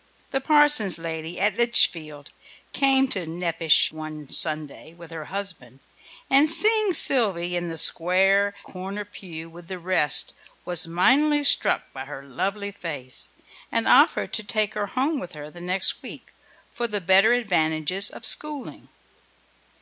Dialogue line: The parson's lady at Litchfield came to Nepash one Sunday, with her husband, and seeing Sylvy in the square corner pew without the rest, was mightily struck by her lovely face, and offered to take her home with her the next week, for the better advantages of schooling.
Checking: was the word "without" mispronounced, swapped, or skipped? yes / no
yes